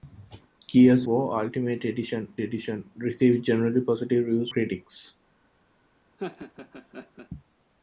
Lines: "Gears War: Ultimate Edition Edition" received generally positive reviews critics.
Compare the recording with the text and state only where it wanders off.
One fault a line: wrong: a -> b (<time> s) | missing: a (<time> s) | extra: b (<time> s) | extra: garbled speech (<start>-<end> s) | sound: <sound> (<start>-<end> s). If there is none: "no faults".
sound: laugh (6.2-7.3 s)